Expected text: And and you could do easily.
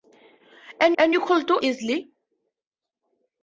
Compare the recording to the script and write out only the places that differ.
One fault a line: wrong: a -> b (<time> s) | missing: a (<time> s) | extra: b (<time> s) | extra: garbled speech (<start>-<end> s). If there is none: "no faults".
no faults